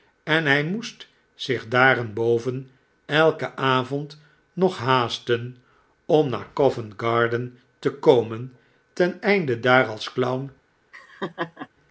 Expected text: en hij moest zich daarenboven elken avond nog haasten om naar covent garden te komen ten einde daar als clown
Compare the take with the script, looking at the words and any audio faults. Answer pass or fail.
fail